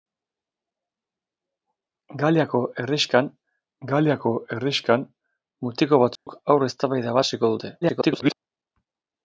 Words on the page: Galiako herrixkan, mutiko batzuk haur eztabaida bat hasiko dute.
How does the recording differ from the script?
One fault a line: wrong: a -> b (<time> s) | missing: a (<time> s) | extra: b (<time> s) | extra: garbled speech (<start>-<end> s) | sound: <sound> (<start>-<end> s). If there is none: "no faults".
extra: galiako herrixkan (3.9 s)
sound: dropout (6.2-6.3 s)
missing: bat (7.2 s)
extra: garbled speech (7.8-8.3 s)